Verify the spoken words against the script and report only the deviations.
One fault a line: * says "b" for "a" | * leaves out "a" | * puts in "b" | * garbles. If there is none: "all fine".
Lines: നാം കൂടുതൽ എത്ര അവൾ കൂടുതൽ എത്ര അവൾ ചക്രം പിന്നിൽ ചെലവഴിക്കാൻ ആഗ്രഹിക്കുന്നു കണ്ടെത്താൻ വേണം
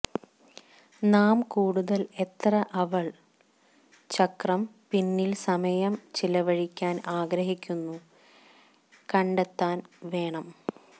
* leaves out "കൂടുതൽ എത്ര അവൾ"
* puts in "സമയം"